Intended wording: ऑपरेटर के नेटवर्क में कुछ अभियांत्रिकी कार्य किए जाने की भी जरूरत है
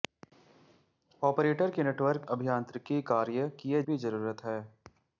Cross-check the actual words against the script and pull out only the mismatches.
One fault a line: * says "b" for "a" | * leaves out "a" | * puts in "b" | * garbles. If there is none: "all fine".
* leaves out "में कुछ"
* leaves out "जाने की"